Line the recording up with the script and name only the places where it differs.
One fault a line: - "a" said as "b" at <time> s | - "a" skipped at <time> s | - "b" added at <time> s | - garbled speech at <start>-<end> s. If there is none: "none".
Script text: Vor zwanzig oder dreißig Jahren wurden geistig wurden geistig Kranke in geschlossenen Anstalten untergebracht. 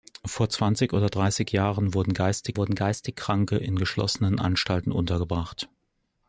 none